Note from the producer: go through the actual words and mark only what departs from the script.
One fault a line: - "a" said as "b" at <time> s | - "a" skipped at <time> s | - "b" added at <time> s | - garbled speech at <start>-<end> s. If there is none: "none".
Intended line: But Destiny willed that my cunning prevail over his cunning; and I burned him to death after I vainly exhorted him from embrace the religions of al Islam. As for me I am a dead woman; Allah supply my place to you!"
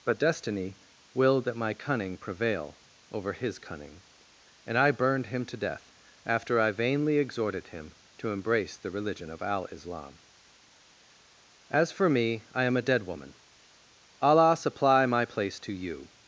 - "from" said as "to" at 8.2 s
- "religions" said as "religion" at 8.9 s